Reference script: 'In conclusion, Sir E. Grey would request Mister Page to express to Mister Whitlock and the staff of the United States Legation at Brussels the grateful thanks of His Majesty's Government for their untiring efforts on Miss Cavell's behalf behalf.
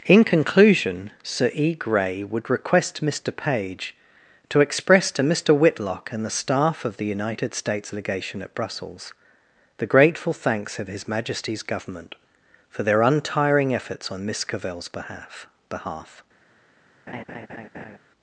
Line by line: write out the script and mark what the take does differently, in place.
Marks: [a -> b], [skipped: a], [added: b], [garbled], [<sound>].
'In conclusion, Sir E. Grey would request Mister Page to express to Mister Whitlock and the staff of the United States Legation at Brussels the grateful thanks of His Majesty's Government for their untiring efforts on Miss Cavell's behalf behalf. [laugh]